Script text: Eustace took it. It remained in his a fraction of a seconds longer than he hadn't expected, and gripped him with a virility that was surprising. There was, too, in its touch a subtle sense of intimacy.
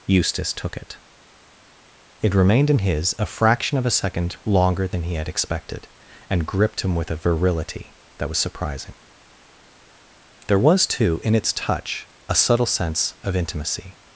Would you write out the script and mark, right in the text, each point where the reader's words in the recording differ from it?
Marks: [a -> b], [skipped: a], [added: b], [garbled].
Eustace took it. It remained in his a fraction of a [seconds -> second] longer than he [hadn't -> had] expected, and gripped him with a virility that was surprising. There was, too, in its touch a subtle sense of intimacy.